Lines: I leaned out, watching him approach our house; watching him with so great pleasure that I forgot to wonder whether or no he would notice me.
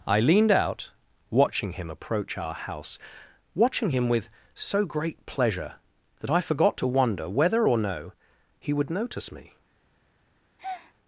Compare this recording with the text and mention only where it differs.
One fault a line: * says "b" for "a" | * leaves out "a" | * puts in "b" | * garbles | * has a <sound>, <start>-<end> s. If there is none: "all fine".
* has a breath, 10.6-10.9 s